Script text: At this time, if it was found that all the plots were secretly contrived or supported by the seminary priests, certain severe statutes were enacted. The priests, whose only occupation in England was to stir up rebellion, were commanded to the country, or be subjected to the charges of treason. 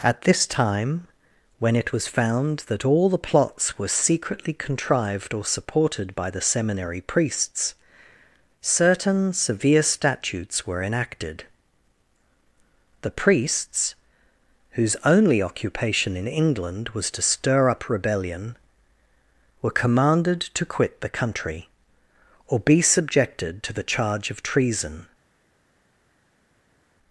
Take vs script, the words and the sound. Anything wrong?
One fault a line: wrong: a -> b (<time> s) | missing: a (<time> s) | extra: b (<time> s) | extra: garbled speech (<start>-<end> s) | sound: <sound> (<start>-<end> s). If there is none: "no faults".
wrong: if -> when (1.6 s)
extra: quit (20.6 s)
wrong: charges -> charge (23.8 s)